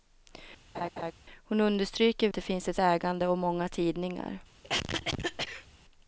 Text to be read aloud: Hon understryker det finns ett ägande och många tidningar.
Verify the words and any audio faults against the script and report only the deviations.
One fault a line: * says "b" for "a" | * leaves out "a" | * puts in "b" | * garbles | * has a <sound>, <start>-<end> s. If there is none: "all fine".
* has a laugh, 0.7-1.1 s
* has a cough, 4.6-5.7 s